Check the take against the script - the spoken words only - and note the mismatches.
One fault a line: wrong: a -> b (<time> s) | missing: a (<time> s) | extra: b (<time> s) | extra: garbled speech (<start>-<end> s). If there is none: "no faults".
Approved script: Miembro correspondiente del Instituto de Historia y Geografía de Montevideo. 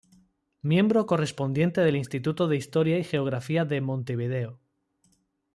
no faults